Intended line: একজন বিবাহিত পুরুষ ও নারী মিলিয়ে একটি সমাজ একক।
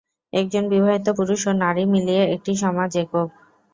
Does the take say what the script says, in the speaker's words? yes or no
yes